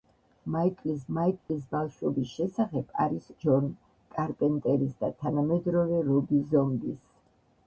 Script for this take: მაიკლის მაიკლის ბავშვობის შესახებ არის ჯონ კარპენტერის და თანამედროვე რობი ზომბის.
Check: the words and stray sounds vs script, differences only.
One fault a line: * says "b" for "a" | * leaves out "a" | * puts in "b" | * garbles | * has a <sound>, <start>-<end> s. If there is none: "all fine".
* has a dropout, 1.4-1.5 s